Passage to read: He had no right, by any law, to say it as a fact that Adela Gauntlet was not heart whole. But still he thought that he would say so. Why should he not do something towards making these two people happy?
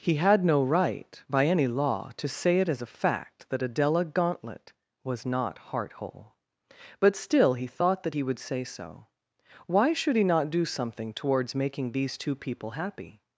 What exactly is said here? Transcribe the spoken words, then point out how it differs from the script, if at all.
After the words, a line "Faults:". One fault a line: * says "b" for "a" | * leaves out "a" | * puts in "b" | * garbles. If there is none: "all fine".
He had no right, by any law, to say it as a fact that Adela Gauntlet was not heart whole. But still he thought that he would say so. Why should he not do something towards making these two people happy?
Faults:
all fine